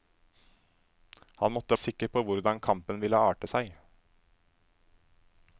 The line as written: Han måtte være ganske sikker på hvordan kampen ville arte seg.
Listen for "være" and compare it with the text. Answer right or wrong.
wrong